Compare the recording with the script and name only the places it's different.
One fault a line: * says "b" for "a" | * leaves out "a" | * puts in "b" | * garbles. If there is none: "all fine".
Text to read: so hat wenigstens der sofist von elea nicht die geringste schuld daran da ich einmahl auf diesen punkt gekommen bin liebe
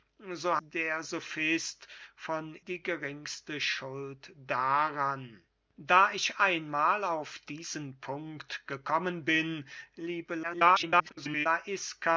* leaves out "hat wenigstens"
* leaves out "elea nicht"
* garbles